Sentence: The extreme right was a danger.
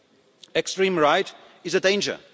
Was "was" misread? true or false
true